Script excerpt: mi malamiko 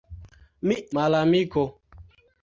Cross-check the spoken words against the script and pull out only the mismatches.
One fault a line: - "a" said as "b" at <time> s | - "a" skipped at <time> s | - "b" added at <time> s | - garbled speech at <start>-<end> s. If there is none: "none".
none